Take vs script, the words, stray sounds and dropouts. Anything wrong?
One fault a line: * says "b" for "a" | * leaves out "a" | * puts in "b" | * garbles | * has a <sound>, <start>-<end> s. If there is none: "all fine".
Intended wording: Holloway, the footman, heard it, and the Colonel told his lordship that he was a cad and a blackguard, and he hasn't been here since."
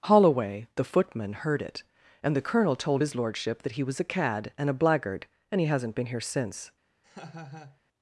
* has a laugh, 7.0-7.8 s